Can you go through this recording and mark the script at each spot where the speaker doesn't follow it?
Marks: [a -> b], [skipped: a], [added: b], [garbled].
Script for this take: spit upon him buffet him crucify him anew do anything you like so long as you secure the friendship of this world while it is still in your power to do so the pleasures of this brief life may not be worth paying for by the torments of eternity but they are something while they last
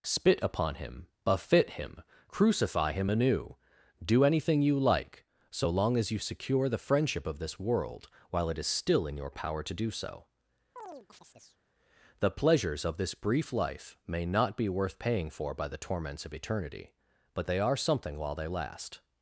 spit upon him buffet him crucify him anew do anything you like so long as you secure the friendship of this world while it is still in your power to do so the pleasures of this brief life may not be worth paying for by the torments of eternity but they are something while they last